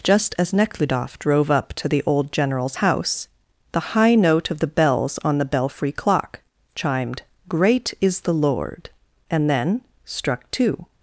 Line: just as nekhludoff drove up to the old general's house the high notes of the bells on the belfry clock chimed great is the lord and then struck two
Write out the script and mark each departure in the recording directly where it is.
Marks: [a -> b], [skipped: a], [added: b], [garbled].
just as nekhludoff drove up to the old general's house the high [notes -> note] of the bells on the belfry clock chimed great is the lord and then struck two